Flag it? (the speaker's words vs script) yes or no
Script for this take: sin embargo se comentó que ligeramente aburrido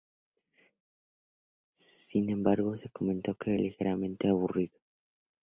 no